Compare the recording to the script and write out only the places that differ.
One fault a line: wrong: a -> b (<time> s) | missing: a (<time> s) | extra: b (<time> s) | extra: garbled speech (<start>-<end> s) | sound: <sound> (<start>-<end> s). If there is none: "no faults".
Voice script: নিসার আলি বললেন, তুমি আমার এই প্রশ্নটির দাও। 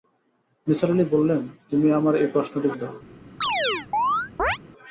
sound: chirp (3.4-4.6 s)